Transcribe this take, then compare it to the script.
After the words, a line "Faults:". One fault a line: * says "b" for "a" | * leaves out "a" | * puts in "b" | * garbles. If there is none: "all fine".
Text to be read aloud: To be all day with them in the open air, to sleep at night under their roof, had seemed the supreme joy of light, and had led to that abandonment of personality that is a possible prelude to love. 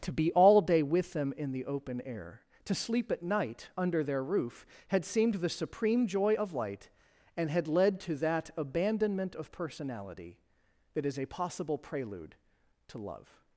To be all day with them in the open air, to sleep at night under their roof, had seemed the supreme joy of light, and had led to that abandonment of personality that is a possible prelude to love.
Faults:
all fine